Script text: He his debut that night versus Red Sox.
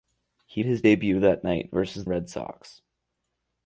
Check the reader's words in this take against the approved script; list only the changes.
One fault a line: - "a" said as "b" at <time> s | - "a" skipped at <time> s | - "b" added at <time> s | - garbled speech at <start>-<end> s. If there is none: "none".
none